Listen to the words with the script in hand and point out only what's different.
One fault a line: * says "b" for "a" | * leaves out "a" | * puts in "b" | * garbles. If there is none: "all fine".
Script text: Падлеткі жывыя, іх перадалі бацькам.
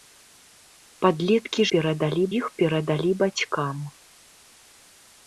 * says "перадалі" for "жывыя"